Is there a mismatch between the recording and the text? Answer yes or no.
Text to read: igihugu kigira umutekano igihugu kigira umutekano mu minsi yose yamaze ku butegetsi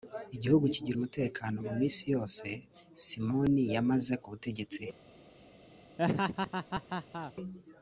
yes